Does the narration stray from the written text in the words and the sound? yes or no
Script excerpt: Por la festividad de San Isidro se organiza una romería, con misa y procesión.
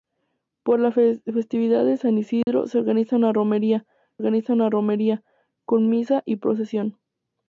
yes